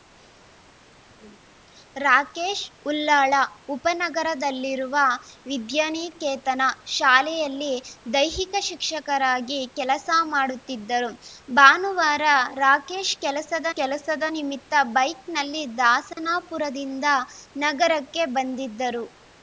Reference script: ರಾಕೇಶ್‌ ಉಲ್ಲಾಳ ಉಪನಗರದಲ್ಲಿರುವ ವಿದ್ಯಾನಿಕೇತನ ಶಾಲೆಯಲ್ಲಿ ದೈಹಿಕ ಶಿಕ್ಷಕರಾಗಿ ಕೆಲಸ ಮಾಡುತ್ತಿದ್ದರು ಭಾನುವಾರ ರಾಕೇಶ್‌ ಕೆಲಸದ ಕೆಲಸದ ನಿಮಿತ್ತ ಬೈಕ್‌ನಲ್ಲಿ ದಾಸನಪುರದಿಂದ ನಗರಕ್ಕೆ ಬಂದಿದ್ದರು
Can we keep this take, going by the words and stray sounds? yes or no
no